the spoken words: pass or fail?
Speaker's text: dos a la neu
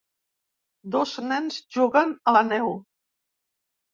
fail